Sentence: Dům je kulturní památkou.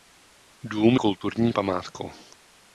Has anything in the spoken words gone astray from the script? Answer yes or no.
yes